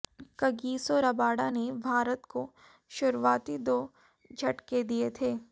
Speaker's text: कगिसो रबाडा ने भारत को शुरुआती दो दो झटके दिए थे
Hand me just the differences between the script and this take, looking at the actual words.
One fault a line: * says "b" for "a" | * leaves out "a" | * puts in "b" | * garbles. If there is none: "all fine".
* leaves out "दो"